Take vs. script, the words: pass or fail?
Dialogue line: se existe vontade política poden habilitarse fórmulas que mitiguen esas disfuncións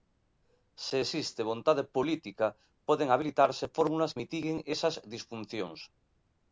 fail